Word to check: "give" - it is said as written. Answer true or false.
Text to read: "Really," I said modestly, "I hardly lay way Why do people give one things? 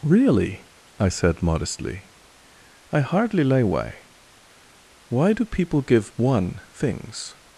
true